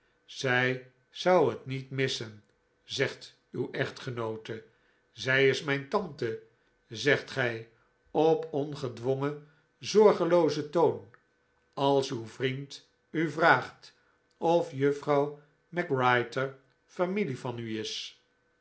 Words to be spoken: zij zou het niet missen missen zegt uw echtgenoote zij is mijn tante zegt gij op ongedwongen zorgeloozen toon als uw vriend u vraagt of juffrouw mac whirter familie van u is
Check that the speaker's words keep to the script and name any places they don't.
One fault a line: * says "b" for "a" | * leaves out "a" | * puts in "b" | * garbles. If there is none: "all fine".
* leaves out "missen"